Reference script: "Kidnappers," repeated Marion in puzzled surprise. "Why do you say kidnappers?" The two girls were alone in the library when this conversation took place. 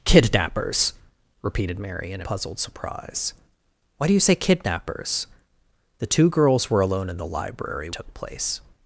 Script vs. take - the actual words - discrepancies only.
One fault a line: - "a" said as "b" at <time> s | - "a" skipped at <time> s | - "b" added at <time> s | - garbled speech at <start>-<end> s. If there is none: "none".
- "in" skipped at 2.2 s
- "when this conversation" skipped at 7.9 s